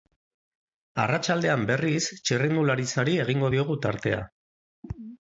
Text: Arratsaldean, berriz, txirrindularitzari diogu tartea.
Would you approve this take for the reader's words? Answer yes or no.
no